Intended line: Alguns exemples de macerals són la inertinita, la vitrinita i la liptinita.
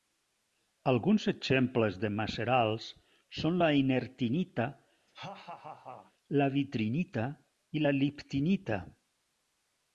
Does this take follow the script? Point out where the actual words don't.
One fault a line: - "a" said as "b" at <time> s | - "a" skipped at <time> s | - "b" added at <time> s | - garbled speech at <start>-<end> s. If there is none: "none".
none